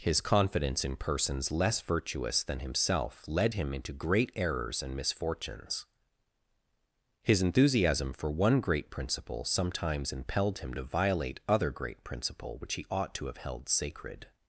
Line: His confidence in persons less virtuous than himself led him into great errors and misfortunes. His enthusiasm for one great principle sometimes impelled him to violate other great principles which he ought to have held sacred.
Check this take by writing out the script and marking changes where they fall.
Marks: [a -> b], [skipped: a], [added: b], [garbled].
His confidence in persons less virtuous than himself led him into great errors and misfortunes. His enthusiasm for one great principle sometimes impelled him to violate other great [principles -> principle] which he ought to have held sacred.